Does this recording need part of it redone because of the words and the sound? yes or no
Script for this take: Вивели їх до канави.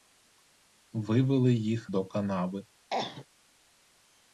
yes